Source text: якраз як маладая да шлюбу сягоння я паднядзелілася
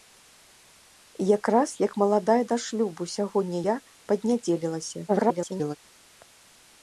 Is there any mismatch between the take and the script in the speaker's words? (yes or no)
yes